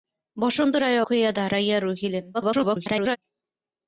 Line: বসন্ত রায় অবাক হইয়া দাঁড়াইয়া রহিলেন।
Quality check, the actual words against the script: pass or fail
fail